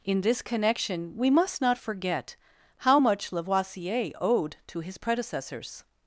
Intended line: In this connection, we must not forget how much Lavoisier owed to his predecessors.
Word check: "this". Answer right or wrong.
right